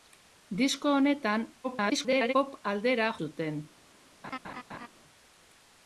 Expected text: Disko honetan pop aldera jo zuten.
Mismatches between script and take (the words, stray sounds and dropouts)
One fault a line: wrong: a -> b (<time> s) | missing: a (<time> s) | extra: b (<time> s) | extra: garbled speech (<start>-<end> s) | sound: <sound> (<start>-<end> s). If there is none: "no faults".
extra: garbled speech (1.6-2.3 s)
missing: jo (3.1 s)
sound: laugh (4.2-4.9 s)